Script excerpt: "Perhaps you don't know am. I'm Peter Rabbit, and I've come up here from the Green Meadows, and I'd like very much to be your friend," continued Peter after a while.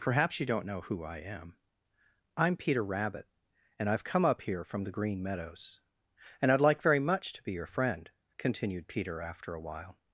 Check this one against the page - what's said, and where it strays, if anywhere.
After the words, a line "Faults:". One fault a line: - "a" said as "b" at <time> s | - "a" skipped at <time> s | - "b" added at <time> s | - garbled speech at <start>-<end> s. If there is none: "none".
"Perhaps you don't know who I am. I'm Peter Rabbit, and I've come up here from the Green Meadows, and I'd like very much to be your friend," continued Peter after a while.
Faults:
- "who I" added at 0.8 s